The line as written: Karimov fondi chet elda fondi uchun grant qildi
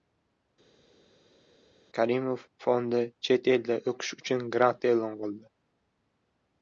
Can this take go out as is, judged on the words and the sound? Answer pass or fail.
fail